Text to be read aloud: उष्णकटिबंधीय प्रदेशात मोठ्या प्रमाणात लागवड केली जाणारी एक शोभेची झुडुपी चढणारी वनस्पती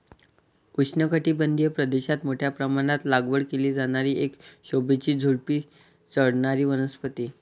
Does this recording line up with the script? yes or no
yes